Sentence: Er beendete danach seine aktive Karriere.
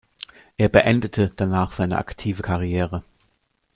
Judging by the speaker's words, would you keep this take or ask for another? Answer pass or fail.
pass